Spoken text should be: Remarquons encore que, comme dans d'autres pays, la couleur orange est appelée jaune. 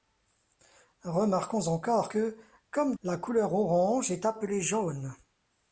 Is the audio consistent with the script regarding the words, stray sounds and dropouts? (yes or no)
no